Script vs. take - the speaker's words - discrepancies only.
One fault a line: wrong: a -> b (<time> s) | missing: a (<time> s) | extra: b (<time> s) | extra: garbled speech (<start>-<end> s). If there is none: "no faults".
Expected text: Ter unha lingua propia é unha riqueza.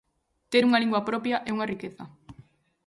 no faults